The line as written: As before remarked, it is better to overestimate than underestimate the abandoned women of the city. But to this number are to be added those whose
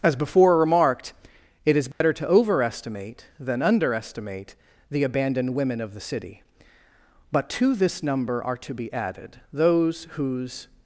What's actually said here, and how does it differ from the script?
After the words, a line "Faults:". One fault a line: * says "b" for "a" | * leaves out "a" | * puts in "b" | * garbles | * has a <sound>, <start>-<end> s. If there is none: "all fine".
As before remarked, it is better to overestimate than underestimate the abandoned women of the city. But to this number are to be added those whose
Faults:
* has a dropout, 1.9-2.0 s